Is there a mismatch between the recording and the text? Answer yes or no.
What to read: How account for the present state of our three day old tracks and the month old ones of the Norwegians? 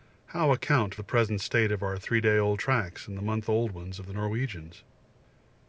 yes